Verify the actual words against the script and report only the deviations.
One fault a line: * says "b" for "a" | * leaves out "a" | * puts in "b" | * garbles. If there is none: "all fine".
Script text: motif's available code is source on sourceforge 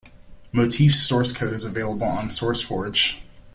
* says "source" for "available"
* says "available" for "source"